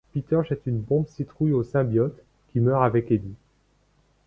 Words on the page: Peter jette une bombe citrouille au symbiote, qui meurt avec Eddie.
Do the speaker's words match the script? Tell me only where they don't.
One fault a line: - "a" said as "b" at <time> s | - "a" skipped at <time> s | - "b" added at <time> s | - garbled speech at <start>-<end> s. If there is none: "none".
none